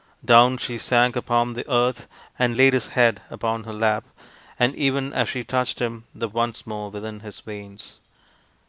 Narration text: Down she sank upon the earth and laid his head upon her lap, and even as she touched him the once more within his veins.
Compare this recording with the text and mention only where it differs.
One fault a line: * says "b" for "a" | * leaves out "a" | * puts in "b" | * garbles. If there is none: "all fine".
all fine